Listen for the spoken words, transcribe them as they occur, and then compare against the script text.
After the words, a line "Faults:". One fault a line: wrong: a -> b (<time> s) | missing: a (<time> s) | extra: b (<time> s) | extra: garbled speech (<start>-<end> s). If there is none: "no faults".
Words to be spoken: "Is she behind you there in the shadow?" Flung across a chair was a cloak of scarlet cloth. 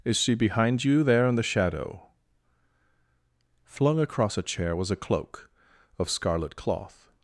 "Is she behind you there in the shadow?" Flung across a chair was a cloak of scarlet cloth.
Faults:
no faults